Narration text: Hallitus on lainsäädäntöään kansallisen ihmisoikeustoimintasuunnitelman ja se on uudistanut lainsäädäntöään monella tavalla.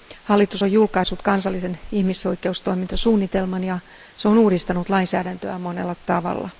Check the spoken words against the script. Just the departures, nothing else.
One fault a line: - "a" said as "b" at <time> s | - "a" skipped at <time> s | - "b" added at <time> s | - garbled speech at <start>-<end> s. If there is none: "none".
- "lainsäädäntöään" said as "julkaissut" at 0.7 s